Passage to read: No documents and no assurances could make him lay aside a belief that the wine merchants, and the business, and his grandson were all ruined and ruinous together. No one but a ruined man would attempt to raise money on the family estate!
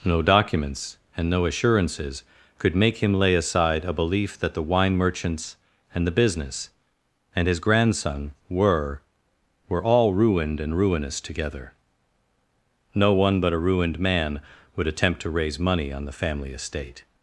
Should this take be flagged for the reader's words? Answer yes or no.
yes